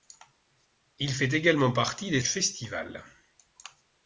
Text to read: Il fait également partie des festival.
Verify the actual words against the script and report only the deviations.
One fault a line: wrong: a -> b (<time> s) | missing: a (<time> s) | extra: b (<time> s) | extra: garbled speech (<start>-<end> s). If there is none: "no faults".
no faults